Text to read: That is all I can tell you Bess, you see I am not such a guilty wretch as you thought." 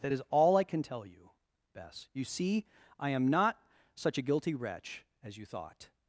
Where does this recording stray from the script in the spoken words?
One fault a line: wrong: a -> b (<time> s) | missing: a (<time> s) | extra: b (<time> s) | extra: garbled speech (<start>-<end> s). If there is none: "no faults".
no faults